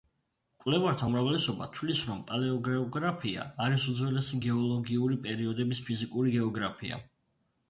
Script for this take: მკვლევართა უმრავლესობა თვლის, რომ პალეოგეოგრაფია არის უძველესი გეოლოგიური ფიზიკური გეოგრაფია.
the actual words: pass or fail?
fail